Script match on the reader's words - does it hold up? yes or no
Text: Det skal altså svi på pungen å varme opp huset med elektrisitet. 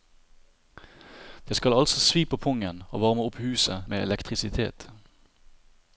yes